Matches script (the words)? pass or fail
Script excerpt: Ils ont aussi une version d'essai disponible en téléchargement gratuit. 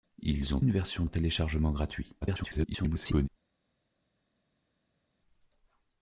fail